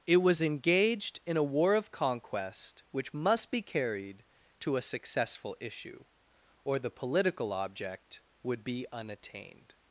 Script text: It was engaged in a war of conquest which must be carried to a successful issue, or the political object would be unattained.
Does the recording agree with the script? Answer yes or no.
yes